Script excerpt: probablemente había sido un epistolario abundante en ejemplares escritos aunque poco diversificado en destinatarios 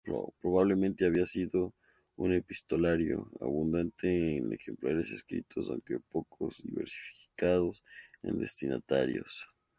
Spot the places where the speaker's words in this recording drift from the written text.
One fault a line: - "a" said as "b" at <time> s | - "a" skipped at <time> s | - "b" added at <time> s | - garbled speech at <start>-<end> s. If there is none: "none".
none